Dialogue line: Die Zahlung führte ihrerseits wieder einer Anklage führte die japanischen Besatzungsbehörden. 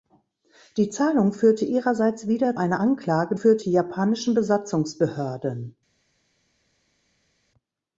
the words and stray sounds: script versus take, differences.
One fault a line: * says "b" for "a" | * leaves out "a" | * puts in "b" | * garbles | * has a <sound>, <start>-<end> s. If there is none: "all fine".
all fine